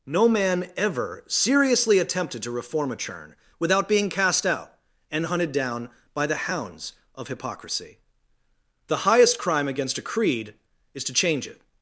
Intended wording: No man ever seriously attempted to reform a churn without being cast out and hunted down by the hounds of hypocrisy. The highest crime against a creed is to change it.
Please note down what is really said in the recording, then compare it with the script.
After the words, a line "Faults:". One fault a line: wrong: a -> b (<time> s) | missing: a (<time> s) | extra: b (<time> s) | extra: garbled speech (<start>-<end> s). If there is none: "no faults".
No man ever seriously attempted to reform a churn without being cast out and hunted down by the hounds of hypocrisy. The highest crime against a creed is to change it.
Faults:
no faults